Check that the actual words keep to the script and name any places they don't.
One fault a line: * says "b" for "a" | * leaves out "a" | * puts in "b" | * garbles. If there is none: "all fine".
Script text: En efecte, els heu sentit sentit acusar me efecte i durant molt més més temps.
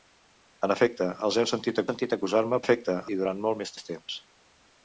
all fine